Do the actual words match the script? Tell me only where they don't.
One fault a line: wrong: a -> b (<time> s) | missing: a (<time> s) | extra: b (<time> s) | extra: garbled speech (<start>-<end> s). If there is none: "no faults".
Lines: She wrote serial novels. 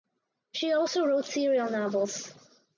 extra: also (0.7 s)